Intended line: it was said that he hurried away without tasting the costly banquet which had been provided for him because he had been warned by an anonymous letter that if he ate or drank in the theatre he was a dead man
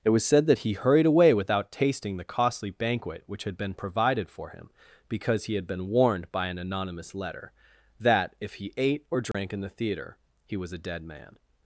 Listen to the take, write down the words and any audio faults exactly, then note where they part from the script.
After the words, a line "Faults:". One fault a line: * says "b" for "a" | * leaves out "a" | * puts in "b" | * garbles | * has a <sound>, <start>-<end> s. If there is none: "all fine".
it was said that he hurried away without tasting the costly banquet which had been provided for him because he had been warned by an anonymous letter that if he ate or drank in the theatre he was a dead man
Faults:
* has a dropout, 9.3-9.3 s